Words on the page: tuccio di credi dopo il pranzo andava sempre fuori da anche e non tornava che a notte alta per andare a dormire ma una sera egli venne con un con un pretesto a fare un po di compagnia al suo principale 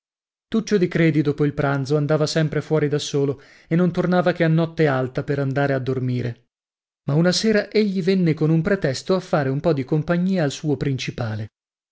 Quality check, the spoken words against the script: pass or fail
fail